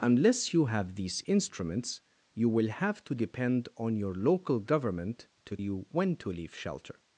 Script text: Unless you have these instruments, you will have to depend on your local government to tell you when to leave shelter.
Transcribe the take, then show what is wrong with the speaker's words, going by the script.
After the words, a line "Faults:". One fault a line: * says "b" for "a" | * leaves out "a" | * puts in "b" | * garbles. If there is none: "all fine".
Unless you have these instruments, you will have to depend on your local government to you when to leave shelter.
Faults:
* leaves out "tell"